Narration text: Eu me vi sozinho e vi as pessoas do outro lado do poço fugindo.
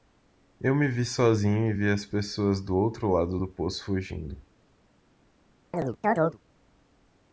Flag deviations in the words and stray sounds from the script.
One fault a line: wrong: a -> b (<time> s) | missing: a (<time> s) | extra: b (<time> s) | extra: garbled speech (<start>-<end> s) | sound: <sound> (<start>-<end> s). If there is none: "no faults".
sound: chirp (5.7-6.4 s)